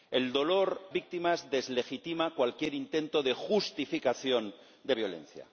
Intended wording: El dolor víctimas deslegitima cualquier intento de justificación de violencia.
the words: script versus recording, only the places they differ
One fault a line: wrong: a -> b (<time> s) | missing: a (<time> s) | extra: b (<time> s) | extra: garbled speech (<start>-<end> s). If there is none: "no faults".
no faults